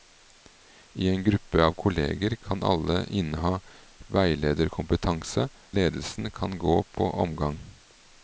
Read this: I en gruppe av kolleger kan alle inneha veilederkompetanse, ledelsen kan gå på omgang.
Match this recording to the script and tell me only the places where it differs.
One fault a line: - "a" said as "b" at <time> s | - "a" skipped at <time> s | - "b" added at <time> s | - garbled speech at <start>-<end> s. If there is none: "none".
none